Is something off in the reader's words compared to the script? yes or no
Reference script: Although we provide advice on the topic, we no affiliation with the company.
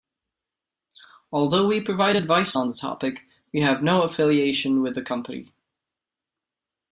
yes